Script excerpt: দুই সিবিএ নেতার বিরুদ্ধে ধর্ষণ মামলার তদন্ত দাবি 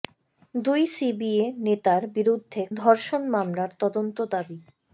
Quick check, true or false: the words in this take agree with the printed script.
true